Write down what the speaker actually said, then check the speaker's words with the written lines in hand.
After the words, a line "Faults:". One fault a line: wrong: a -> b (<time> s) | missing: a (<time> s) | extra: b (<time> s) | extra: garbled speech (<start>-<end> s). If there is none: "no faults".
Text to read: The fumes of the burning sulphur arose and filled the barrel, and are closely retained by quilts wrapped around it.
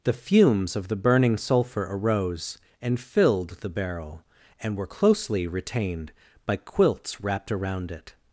The fumes of the burning sulphur arose and filled the barrel, and were closely retained by quilts wrapped around it.
Faults:
wrong: are -> were (4.8 s)